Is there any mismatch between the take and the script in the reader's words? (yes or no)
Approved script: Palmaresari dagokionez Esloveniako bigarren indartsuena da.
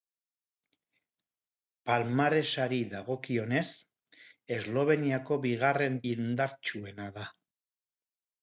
no